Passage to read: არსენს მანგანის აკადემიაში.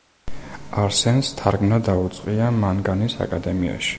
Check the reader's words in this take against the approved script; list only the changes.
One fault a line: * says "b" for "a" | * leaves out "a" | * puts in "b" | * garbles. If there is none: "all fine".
* puts in "თარგმნა დაუწყია"